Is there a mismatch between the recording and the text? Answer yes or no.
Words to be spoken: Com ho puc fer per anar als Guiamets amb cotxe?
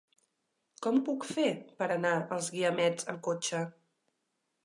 no